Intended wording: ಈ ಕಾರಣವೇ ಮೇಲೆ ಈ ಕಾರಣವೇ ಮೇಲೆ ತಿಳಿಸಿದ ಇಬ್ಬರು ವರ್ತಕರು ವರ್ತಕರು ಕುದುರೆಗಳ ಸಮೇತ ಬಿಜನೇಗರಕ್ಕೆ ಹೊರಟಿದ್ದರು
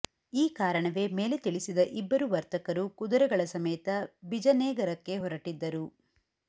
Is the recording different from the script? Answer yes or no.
yes